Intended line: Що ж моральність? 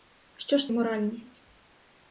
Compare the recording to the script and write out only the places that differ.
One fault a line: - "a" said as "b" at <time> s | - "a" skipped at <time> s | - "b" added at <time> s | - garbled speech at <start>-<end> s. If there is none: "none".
none